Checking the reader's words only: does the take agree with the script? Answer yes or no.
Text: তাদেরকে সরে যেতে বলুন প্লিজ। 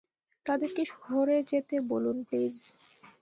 yes